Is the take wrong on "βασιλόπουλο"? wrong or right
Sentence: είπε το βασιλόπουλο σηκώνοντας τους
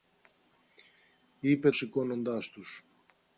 wrong